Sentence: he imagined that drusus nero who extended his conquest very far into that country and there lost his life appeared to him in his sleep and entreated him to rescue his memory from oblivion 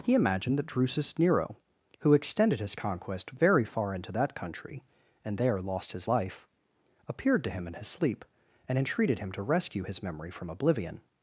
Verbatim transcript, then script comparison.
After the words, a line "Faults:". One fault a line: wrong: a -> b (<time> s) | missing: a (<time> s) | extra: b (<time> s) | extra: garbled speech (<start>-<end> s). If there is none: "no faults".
he imagined that drusus nero who extended his conquest very far into that country and there lost his life appeared to him in his sleep and entreated him to rescue his memory from oblivion
Faults:
no faults